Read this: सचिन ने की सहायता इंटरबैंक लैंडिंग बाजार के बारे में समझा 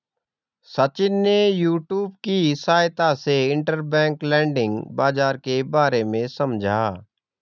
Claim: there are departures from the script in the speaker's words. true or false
true